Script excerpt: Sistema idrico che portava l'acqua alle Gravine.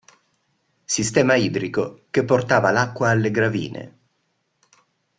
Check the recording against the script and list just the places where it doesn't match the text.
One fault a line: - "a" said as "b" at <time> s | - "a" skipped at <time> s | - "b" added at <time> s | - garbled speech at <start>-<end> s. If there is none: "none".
none